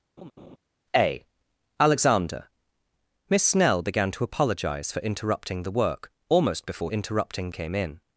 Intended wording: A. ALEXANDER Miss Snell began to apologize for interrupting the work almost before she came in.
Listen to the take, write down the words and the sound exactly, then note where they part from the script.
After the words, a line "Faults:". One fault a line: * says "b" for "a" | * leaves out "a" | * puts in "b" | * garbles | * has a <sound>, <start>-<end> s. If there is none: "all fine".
A. ALEXANDER Miss Snell began to apologize for interrupting the work almost before interrupting came in.
Faults:
* has a laugh, 0.2-0.6 s
* says "interrupting" for "she"